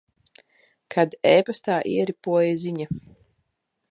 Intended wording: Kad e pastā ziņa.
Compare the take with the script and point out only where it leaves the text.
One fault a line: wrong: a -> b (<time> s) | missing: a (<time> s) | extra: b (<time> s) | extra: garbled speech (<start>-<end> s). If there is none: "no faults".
extra: ieripoja (1.9 s)